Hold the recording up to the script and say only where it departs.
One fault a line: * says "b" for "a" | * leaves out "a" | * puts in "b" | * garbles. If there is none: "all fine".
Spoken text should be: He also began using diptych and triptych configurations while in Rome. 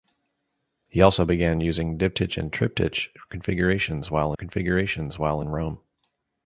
* puts in "configurations while"